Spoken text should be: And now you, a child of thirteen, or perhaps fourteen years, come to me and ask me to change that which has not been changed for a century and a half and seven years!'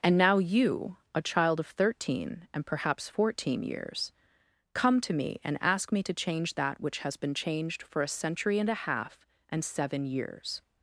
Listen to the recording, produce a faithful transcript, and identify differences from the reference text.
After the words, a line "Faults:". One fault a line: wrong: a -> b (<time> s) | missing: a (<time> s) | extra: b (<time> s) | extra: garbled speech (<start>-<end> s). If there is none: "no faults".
And now you, a child of thirteen, and perhaps fourteen years, come to me and ask me to change that which has been changed for a century and a half and seven years!'
Faults:
wrong: or -> and (2.5 s)
missing: not (7.2 s)